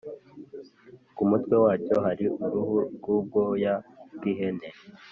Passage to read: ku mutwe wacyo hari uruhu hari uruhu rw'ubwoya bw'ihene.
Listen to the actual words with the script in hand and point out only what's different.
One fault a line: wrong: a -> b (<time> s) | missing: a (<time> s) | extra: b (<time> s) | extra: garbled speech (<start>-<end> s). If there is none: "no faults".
missing: hari uruhu (2.8 s)